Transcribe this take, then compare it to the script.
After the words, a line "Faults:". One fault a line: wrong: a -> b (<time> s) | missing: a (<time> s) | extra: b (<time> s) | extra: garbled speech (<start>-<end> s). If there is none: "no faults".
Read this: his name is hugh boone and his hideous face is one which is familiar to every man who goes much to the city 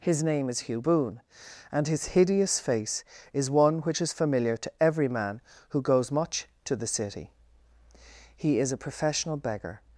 his name is hugh boone and his hideous face is one which is familiar to every man who goes much to the city he is a professional beggar
Faults:
extra: he is a professional beggar (8.3 s)